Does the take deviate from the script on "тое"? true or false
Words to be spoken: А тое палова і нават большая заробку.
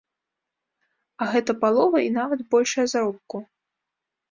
true